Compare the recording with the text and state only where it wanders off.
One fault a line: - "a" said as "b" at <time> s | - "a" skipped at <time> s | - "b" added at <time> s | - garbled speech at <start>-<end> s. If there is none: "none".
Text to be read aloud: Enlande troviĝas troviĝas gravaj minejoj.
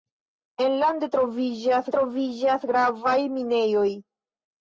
none